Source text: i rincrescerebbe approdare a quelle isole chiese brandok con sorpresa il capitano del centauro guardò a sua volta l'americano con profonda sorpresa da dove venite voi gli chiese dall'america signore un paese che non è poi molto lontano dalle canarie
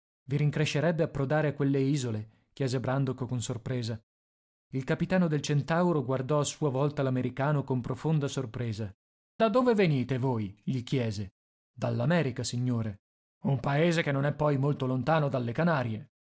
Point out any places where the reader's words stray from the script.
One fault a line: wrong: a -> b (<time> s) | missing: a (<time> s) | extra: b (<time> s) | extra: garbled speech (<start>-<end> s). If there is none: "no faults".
no faults